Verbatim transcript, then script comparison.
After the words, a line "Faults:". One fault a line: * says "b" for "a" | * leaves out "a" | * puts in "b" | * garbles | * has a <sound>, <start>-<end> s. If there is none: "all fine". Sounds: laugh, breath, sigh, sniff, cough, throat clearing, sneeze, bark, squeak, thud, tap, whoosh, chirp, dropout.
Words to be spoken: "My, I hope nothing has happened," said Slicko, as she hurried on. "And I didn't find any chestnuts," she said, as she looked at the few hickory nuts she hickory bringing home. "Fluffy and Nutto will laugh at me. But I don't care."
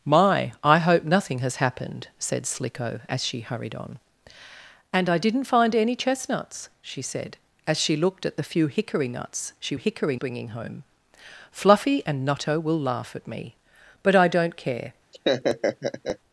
"My, I hope nothing has happened," said Slicko, as she hurried on. "And I didn't find any chestnuts," she said, as she looked at the few hickory nuts she hickory bringing home. "Fluffy and Nutto will laugh at me. But I don't care."
Faults:
* has a laugh, 15.1-16.2 s